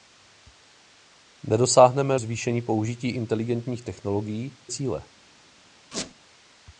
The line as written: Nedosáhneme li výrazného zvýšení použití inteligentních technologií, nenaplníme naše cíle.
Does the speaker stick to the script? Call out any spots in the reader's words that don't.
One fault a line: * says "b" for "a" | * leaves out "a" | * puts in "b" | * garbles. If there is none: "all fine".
* leaves out "li výrazného"
* leaves out "nenaplníme naše"